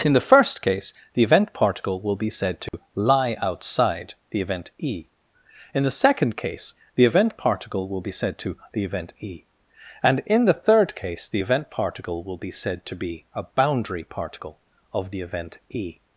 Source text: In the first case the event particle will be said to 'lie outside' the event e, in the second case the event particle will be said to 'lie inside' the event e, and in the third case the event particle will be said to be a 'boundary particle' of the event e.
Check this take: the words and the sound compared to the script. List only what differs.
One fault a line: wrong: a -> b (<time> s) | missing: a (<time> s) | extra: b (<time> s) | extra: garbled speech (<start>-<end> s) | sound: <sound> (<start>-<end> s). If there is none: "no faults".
sound: dropout (2.7-2.7 s)
missing: lie inside (8.6 s)